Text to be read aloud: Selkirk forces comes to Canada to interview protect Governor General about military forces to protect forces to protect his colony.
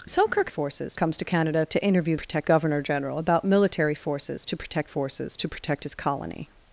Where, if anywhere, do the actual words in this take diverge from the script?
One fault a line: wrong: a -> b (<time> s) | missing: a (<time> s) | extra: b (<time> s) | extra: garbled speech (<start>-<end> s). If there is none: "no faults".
no faults